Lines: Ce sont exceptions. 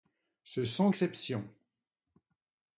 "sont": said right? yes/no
yes